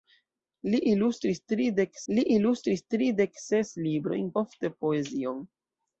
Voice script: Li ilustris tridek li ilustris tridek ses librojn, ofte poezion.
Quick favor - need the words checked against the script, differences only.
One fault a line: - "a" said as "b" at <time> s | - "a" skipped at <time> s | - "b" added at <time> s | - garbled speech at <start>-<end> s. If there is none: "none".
none